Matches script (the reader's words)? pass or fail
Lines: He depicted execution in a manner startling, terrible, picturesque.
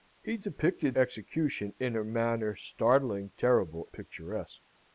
pass